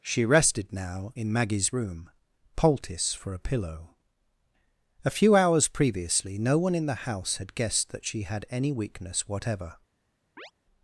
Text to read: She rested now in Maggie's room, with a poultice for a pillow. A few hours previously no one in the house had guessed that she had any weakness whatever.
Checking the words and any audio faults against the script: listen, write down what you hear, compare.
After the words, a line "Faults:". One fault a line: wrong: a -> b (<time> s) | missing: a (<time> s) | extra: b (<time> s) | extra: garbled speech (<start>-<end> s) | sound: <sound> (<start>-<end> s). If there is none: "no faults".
She rested now in Maggie's room, poultice for a pillow. A few hours previously no one in the house had guessed that she had any weakness whatever.
Faults:
missing: with a (2.1 s)
sound: chirp (10.4-10.5 s)